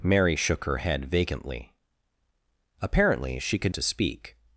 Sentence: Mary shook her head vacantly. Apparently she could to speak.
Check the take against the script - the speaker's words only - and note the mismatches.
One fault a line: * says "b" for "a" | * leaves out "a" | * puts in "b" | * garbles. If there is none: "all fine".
all fine